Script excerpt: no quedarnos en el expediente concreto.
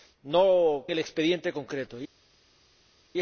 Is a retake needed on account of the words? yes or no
yes